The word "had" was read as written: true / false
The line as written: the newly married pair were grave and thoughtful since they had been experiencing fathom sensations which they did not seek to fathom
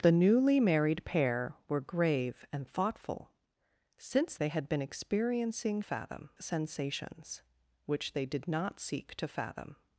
true